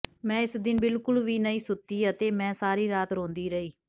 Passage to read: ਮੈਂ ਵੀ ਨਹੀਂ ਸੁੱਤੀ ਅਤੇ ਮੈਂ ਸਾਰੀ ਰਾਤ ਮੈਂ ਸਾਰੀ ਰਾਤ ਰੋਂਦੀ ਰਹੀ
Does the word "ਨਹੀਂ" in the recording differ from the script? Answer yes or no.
no